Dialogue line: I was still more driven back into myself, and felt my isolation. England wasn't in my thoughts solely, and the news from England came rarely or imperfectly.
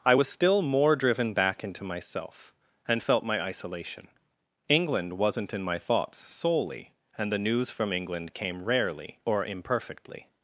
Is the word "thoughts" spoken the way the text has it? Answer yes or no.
yes